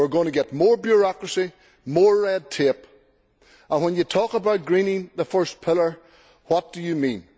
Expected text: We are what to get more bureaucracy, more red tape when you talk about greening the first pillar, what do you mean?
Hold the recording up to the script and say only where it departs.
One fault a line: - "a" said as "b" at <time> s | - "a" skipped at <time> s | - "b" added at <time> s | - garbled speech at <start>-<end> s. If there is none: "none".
- "what" said as "going" at 0.1 s
- "and" added at 3.7 s